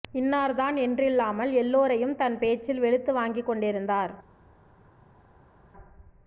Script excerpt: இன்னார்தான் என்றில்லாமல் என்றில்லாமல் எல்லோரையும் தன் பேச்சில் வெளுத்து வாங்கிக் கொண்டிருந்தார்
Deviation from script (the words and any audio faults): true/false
true